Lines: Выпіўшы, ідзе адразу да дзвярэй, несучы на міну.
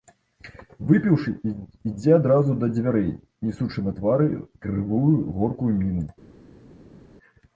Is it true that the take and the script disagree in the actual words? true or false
true